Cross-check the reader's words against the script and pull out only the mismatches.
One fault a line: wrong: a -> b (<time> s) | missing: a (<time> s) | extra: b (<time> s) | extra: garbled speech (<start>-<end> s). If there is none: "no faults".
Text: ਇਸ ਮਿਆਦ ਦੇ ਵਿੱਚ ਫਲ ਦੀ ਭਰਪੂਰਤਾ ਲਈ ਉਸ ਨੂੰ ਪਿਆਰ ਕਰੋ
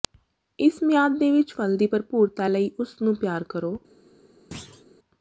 no faults